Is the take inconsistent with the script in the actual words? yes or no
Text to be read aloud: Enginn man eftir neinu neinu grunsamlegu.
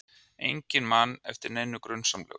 yes